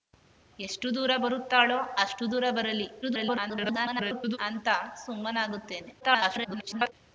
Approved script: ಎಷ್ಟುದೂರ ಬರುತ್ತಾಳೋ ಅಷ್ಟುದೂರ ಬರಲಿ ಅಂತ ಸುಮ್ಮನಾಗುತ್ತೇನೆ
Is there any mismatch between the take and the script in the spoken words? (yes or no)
yes